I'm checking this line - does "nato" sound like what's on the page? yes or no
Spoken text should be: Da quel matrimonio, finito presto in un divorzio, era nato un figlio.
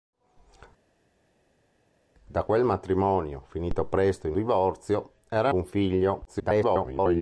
no